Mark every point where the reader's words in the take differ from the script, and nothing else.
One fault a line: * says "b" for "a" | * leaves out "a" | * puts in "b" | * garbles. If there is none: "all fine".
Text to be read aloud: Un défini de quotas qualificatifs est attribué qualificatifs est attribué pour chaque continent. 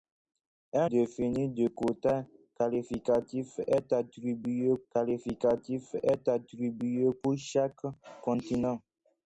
all fine